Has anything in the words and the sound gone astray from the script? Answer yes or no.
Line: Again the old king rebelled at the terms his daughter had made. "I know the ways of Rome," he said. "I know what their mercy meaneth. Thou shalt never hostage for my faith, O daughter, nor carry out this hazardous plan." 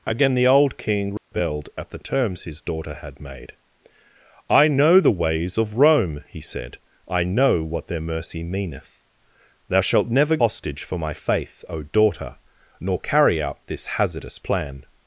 yes